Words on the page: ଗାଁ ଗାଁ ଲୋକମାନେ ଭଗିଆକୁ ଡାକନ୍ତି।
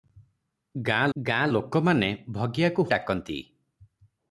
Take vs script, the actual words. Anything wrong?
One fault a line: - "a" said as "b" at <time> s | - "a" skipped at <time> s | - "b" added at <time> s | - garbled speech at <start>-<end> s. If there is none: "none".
none